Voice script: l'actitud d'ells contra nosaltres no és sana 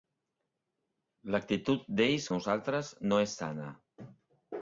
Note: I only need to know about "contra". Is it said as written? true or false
false